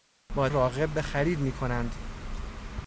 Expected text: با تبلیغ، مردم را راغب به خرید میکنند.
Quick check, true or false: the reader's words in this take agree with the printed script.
false